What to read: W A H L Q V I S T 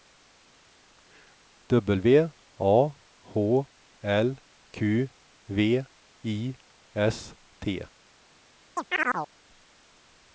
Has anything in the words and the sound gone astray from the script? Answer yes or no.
yes